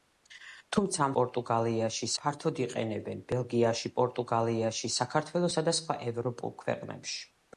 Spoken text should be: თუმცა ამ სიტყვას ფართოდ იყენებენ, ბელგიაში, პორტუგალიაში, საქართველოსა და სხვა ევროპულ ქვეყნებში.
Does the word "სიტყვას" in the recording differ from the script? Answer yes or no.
yes